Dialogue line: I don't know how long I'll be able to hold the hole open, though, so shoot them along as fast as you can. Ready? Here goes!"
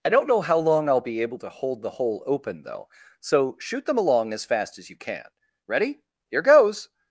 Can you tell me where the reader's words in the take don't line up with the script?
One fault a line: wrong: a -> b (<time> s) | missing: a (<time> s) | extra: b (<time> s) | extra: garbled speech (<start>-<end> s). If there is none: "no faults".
no faults